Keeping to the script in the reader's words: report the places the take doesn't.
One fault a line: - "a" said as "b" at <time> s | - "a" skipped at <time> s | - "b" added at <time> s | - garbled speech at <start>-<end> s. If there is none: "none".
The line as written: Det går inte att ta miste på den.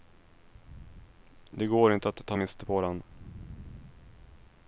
none